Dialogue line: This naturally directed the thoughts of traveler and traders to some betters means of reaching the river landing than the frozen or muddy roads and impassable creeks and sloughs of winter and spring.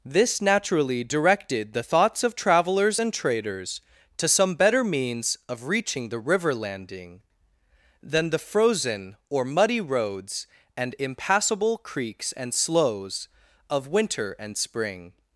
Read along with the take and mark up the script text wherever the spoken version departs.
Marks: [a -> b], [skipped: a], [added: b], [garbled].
This naturally directed the thoughts of [traveler -> travelers] and traders to some [betters -> better] means of reaching the river landing than the frozen or muddy roads and impassable creeks and sloughs of winter and spring.